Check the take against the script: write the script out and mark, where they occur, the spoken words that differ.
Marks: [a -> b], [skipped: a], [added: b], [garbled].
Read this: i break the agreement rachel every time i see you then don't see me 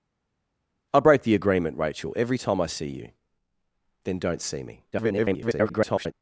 i break the agreement rachel every time i see you then don't see me [garbled]